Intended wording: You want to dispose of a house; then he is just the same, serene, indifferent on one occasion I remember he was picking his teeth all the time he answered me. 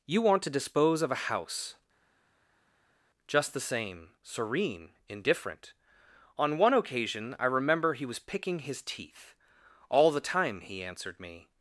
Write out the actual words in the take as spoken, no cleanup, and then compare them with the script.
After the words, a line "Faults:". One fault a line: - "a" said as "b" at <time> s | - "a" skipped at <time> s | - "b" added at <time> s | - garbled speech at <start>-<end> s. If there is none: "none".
You want to dispose of a house; just the same, serene, indifferent on one occasion I remember he was picking his teeth all the time he answered me.
Faults:
- "then he is" skipped at 1.8 s